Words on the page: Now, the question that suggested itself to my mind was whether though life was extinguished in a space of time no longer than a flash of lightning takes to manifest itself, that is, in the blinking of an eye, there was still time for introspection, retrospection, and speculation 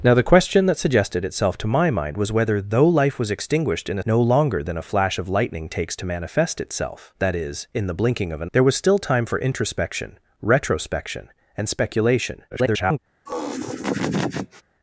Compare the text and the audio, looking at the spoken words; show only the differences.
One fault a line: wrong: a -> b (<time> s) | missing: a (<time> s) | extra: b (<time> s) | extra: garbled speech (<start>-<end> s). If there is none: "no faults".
missing: space of time (4.0 s)
missing: eye (8.5 s)
extra: garbled speech (12.5-13.0 s)